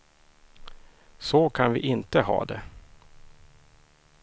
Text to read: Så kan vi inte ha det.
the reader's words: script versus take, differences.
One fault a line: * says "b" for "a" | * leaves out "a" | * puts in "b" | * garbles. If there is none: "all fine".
all fine